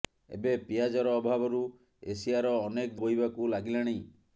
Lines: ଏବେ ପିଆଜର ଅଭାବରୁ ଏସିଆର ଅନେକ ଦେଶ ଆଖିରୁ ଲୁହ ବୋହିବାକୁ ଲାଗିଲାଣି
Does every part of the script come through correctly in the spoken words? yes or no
no